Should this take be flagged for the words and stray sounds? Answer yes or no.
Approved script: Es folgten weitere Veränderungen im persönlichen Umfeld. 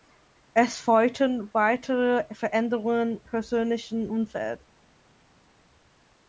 yes